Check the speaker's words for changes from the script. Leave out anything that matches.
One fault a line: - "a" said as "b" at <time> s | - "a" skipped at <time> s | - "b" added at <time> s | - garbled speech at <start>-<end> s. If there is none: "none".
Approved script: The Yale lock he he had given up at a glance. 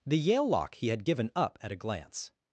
- "he" skipped at 0.9 s